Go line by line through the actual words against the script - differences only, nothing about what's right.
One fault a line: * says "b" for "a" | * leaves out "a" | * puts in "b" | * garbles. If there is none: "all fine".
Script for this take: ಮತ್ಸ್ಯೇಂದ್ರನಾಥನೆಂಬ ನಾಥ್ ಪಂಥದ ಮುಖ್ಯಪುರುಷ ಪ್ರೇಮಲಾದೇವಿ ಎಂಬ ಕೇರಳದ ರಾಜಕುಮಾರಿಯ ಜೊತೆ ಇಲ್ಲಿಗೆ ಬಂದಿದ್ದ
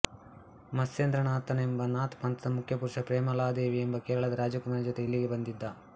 all fine